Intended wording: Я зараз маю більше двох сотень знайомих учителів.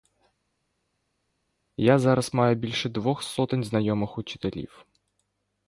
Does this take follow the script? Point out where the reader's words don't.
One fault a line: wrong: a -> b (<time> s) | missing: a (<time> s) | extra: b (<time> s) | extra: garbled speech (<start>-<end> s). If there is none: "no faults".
no faults